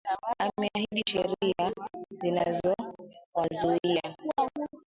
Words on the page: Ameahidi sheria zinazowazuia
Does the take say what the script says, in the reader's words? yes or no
yes